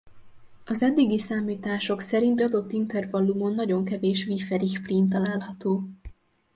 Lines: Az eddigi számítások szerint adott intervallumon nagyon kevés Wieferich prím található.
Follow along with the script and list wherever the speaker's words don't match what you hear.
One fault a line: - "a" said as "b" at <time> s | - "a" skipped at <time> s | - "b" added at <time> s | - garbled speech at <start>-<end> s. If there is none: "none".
none